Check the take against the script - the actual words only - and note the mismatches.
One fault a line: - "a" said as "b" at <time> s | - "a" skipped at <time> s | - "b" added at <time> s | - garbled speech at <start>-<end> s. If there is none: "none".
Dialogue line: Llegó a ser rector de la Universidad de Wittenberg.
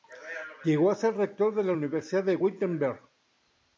none